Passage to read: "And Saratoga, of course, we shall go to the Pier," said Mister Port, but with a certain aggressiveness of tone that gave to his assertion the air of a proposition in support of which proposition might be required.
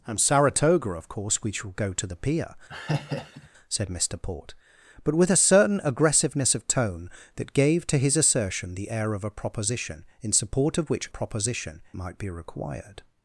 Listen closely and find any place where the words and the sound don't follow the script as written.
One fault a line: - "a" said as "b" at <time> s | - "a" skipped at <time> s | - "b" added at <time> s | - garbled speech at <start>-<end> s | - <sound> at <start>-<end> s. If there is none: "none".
- laugh at 2.7-3.5 s